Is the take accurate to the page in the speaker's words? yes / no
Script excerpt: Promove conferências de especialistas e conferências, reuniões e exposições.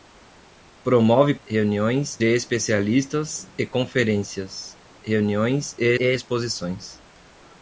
no